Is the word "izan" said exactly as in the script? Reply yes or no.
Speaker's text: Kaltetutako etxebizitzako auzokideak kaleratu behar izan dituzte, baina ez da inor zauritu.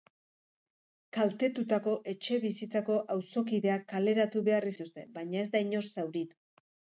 no